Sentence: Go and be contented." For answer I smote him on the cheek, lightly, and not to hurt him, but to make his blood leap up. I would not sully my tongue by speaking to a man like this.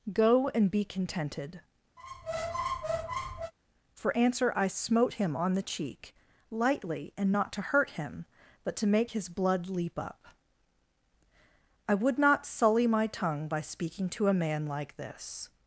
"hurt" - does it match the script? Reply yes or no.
yes